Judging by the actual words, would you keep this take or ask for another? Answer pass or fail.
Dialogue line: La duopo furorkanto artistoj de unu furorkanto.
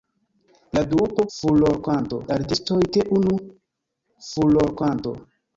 pass